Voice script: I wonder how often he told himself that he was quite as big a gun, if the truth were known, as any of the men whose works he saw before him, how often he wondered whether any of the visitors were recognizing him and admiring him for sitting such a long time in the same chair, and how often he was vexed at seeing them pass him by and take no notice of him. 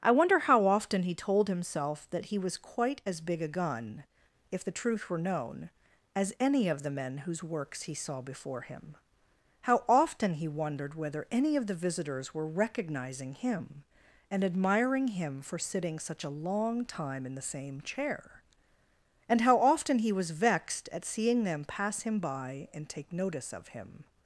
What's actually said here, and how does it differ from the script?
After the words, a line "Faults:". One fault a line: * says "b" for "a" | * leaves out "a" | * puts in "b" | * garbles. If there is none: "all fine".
I wonder how often he told himself that he was quite as big a gun, if the truth were known, as any of the men whose works he saw before him, how often he wondered whether any of the visitors were recognizing him and admiring him for sitting such a long time in the same chair, and how often he was vexed at seeing them pass him by and take notice of him.
Faults:
* leaves out "no"